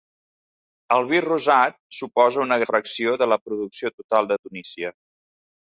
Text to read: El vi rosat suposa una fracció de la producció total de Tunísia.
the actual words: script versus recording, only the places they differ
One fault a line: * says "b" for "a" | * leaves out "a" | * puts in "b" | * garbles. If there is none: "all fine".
all fine